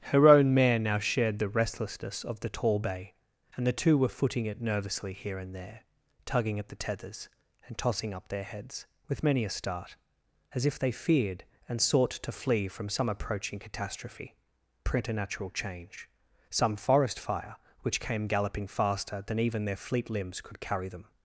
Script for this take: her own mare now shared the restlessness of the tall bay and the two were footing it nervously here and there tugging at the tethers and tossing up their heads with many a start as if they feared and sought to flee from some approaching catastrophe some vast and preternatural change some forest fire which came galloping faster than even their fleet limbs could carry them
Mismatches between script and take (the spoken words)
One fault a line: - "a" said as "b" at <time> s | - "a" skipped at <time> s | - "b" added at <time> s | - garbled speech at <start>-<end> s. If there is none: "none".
- "some vast and" skipped at 14.3 s